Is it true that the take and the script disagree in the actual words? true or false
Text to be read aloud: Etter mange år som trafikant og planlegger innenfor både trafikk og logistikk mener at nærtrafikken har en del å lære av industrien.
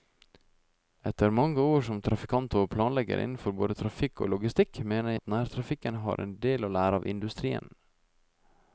false